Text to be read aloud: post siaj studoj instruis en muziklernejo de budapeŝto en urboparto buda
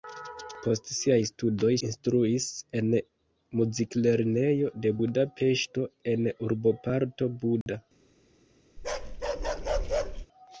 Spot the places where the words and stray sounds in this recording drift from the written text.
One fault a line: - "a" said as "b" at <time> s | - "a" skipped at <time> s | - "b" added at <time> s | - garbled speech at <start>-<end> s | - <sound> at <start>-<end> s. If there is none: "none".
- dropout at 7.6-7.7 s
- bark at 8.8-10.3 s